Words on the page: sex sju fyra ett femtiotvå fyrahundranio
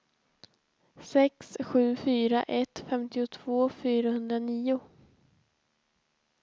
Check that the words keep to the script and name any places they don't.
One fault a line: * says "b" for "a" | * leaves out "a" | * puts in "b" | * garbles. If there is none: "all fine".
all fine